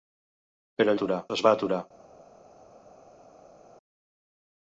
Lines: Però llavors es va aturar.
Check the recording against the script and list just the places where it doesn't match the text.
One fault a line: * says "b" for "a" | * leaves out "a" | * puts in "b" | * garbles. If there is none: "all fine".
* says "aturar" for "llavors"